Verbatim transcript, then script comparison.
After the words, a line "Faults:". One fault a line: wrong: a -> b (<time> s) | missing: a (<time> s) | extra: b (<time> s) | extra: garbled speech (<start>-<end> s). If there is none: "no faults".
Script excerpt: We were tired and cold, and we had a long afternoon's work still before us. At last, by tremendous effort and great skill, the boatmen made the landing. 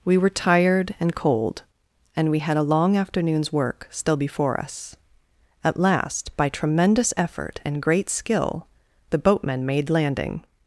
We were tired and cold, and we had a long afternoon's work still before us. At last, by tremendous effort and great skill, the boatmen made landing.
Faults:
missing: the (9.9 s)